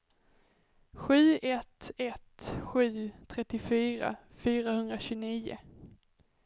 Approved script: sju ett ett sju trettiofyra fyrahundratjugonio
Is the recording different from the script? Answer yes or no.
no